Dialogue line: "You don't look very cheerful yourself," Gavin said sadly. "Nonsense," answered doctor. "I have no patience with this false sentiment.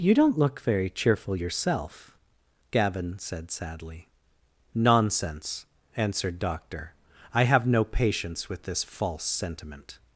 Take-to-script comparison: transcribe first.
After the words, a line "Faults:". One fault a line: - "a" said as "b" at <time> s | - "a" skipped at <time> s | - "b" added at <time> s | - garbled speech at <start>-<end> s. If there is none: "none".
"You don't look very cheerful yourself," Gavin said sadly. "Nonsense," answered doctor. "I have no patience with this false sentiment.
Faults:
none